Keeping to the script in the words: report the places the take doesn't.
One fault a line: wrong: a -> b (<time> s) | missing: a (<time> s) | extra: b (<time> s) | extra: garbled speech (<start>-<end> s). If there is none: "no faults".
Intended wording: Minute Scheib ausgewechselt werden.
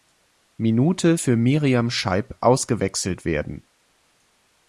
extra: für Miriam (1.2 s)